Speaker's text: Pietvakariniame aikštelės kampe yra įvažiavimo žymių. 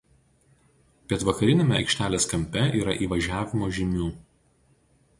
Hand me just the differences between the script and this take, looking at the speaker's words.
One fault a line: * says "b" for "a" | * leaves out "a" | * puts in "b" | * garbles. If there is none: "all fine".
all fine